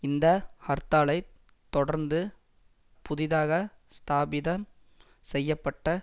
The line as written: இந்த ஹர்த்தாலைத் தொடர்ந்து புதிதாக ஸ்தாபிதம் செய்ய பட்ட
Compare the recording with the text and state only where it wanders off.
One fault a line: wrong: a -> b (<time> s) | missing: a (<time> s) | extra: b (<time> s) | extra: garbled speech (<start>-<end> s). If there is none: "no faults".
no faults